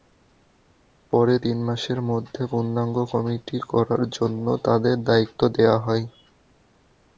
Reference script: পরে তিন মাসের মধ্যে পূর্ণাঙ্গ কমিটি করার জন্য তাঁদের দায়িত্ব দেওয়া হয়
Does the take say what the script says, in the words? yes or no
yes